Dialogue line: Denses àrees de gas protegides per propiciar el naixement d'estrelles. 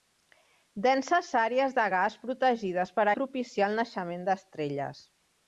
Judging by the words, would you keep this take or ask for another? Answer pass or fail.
pass